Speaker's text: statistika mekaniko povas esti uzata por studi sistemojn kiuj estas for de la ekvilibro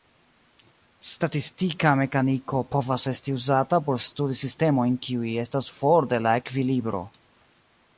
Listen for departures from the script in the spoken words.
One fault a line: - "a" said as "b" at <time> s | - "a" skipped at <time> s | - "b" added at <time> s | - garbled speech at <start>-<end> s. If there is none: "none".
none